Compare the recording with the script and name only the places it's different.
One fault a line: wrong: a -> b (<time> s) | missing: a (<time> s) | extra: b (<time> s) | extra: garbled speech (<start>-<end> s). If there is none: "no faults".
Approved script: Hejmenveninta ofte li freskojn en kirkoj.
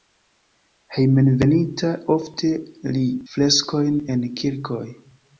no faults